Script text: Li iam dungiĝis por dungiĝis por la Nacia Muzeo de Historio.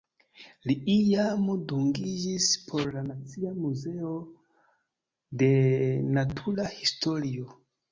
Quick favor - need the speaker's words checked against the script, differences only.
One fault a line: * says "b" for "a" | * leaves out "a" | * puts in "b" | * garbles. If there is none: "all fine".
* leaves out "dungiĝis por"
* puts in "Natura"